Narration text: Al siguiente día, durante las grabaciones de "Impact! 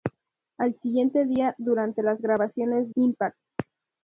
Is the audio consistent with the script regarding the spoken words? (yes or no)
no